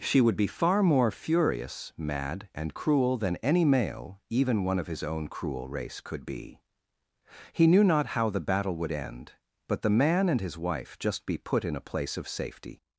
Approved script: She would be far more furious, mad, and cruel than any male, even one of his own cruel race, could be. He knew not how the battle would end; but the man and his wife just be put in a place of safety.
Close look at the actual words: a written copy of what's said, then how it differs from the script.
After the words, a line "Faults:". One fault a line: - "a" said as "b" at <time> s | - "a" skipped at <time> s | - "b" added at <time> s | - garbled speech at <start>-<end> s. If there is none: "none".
She would be far more furious, mad, and cruel than any male, even one of his own cruel race, could be. He knew not how the battle would end; but the man and his wife just be put in a place of safety.
Faults:
none